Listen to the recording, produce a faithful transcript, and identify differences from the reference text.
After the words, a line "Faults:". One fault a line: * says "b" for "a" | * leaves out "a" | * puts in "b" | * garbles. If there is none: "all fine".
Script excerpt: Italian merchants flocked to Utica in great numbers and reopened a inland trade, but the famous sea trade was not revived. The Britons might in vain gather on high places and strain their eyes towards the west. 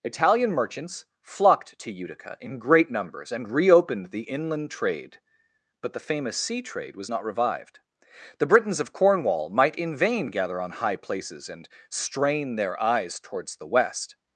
Italian merchants flocked to Utica in great numbers and reopened the inland trade, but the famous sea trade was not revived. The Britons of Cornwall might in vain gather on high places and strain their eyes towards the west.
Faults:
* says "the" for "a"
* puts in "of Cornwall"